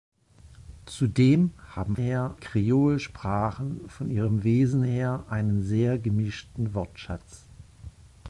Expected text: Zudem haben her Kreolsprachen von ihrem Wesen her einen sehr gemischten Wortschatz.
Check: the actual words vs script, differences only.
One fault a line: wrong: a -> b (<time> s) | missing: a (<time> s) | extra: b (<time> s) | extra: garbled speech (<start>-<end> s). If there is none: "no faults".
no faults